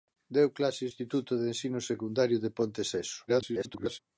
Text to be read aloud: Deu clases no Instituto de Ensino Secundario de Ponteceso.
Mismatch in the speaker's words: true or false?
true